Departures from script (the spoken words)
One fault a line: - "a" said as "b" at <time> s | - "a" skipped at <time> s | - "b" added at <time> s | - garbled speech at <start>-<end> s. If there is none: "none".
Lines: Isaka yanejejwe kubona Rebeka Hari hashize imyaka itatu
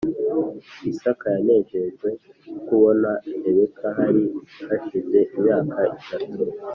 none